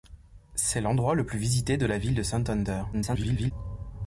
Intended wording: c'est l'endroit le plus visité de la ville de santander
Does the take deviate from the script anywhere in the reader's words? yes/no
yes